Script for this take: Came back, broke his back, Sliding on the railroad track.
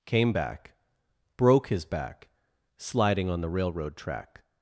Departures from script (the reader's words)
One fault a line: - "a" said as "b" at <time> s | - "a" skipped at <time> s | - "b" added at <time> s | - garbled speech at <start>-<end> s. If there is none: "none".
none